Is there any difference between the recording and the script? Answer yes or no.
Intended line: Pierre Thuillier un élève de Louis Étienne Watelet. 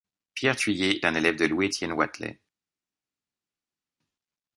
no